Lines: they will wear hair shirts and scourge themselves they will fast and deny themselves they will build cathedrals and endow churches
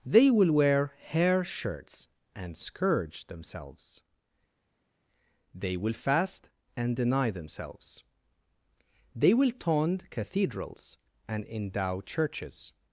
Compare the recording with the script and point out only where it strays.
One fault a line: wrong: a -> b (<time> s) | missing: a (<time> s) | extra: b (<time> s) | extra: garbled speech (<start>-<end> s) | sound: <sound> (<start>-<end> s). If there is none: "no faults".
wrong: build -> tond (9.5 s)